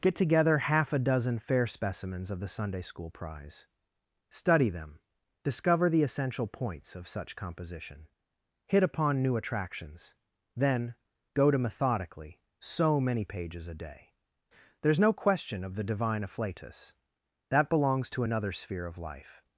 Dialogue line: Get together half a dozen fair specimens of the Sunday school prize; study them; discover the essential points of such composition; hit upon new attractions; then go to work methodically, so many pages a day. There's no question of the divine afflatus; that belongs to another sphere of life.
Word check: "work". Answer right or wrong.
wrong